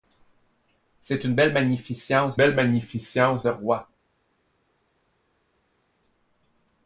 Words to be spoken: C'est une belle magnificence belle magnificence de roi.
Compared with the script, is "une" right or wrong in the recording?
right